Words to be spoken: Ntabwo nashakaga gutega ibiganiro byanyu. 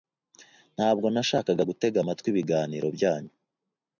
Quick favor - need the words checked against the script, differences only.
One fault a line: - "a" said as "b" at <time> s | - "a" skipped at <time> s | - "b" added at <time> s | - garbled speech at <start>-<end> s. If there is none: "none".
- "amatwi" added at 2.0 s